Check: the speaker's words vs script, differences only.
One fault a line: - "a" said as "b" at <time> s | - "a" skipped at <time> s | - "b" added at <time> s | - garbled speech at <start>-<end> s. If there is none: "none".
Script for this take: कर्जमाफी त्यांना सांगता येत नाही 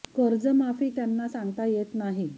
none